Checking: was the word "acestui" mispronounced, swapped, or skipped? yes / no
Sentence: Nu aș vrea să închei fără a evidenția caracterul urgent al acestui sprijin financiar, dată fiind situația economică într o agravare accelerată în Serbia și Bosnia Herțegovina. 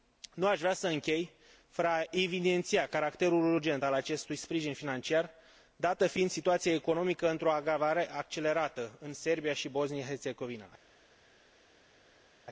no